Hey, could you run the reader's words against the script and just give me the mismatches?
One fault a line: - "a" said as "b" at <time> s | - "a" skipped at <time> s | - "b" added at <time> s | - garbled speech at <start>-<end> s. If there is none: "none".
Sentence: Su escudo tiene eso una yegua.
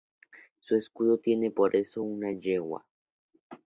- "por" added at 1.5 s